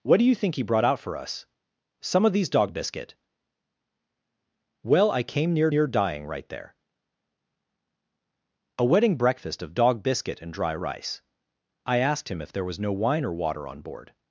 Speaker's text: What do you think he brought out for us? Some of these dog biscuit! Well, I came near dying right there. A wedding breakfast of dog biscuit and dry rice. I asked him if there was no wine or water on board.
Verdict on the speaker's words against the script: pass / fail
fail